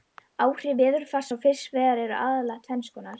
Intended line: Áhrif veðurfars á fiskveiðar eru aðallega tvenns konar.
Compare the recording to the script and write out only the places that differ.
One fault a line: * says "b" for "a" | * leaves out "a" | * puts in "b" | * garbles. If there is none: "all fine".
all fine